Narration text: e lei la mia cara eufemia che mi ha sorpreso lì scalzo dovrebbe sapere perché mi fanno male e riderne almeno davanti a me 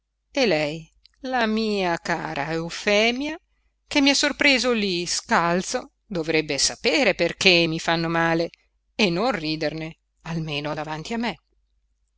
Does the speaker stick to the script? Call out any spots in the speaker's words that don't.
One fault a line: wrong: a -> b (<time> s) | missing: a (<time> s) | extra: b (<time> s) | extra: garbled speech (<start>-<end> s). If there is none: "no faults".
extra: non (9.1 s)